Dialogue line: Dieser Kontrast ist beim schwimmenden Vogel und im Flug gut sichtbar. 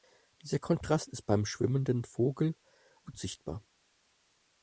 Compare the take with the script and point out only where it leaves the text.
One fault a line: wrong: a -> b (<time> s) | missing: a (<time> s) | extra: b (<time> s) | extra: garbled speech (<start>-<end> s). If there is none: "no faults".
missing: und im Flug (2.6 s)